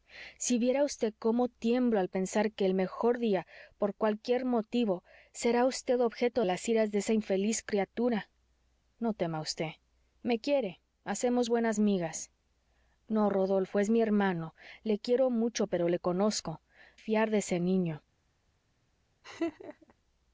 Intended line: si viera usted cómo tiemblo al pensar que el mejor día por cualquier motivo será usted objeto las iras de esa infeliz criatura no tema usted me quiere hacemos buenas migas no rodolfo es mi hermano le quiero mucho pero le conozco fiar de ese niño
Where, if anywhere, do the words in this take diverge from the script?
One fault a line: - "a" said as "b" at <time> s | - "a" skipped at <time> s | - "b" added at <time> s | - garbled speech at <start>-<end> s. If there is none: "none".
none